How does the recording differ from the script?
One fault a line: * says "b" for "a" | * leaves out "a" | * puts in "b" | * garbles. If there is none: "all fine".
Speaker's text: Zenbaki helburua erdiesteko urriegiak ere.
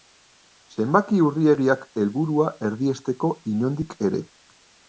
* puts in "urriegiak"
* says "inondik" for "urriegiak"